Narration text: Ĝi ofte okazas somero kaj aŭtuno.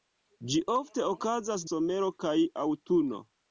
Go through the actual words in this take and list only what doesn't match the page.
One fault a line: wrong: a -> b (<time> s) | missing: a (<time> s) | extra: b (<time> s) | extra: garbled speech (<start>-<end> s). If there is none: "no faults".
no faults